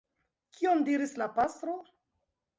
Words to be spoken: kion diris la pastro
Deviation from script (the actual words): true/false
false